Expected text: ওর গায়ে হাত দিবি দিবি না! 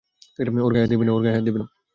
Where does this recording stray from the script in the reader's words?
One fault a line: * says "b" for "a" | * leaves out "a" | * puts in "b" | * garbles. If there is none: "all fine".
* leaves out "দিবি"